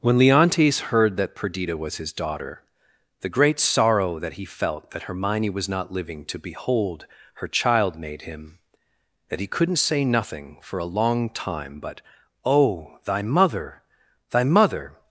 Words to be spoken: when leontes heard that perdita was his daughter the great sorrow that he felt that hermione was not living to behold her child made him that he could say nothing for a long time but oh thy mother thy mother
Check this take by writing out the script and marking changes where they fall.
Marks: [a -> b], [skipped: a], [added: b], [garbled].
when leontes heard that perdita was his daughter the great sorrow that he felt that hermione was not living to behold her child made him that he [could -> couldn't] say nothing for a long time but oh thy mother thy mother